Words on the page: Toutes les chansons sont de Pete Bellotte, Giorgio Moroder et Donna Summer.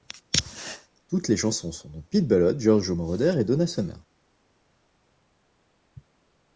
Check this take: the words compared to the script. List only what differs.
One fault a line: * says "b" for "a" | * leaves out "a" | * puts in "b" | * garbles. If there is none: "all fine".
all fine